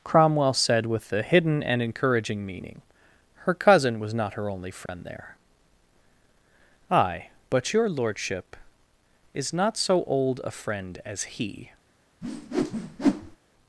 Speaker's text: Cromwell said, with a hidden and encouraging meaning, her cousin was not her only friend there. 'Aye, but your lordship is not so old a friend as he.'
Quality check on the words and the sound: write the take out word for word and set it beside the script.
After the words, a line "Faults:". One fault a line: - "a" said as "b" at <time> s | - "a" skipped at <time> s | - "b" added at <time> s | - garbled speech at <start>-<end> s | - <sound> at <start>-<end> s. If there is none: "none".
Cromwell said, with a hidden and encouraging meaning, her cousin was not her only friend there. 'Aye, but your lordship is not so old a friend as he.'
Faults:
- dropout at 4.9-4.9 s
- whoosh at 12.2-13.4 s